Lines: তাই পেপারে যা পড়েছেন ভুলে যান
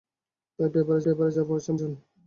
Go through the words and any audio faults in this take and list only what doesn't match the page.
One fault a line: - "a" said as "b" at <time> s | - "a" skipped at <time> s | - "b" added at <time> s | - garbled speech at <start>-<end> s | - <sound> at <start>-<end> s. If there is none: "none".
- "পেপারে" added at 1.0 s
- "ভুলে" skipped at 1.7 s